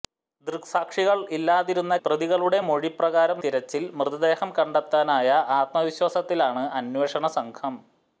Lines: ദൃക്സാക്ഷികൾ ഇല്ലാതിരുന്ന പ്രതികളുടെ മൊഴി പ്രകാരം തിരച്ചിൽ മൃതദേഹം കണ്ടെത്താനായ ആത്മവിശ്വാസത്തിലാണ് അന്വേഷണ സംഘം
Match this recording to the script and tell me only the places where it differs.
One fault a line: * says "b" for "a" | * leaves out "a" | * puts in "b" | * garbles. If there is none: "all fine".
all fine